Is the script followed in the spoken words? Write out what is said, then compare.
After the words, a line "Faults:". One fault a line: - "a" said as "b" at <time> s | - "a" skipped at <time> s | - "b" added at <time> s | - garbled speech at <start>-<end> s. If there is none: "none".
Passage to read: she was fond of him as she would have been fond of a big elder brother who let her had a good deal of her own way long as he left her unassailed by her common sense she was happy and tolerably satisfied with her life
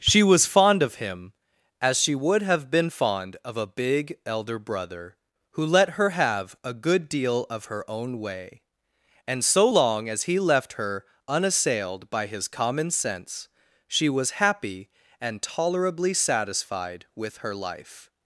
she was fond of him as she would have been fond of a big elder brother who let her have a good deal of her own way and so long as he left her unassailed by his common sense she was happy and tolerably satisfied with her life
Faults:
- "had" said as "have" at 6.1 s
- "and so" added at 9.3 s
- "her" said as "his" at 12.3 s